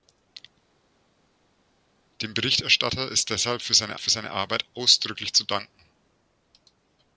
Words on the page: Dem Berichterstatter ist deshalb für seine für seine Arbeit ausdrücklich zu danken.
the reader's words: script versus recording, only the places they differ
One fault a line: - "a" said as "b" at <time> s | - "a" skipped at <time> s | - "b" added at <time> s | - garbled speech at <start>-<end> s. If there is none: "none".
none